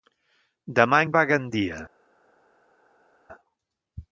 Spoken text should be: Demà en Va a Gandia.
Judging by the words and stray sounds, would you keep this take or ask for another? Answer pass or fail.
pass